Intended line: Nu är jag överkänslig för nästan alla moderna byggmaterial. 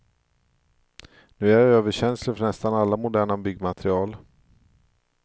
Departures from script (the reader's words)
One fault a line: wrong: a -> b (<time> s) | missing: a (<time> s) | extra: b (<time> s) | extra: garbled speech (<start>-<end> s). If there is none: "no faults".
no faults